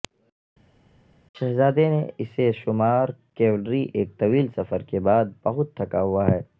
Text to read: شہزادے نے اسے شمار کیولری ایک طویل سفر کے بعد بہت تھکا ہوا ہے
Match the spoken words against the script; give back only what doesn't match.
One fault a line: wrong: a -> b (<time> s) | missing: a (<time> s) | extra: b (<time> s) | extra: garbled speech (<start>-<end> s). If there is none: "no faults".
no faults